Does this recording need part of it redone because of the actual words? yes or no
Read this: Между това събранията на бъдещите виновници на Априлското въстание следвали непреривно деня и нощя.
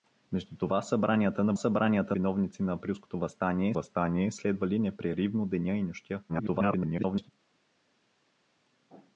yes